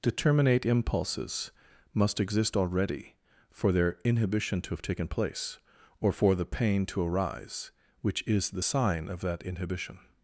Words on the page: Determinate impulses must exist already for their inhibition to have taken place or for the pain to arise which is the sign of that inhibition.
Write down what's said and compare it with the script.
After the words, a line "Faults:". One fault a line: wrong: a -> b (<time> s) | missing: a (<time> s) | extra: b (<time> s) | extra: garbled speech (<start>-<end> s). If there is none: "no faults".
Determinate impulses must exist already for their inhibition to have taken place or for the pain to arise which is the sign of that inhibition.
Faults:
no faults